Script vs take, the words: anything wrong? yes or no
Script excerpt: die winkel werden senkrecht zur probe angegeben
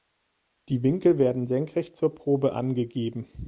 no